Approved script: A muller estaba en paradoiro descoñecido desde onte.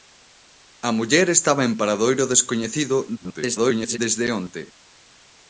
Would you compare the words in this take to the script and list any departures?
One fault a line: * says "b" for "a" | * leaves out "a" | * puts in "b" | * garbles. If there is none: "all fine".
* garbles